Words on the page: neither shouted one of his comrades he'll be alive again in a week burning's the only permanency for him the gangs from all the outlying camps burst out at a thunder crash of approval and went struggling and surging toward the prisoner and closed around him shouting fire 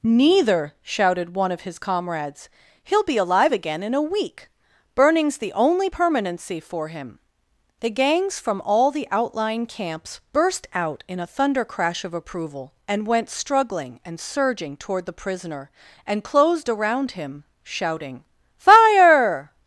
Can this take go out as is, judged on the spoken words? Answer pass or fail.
fail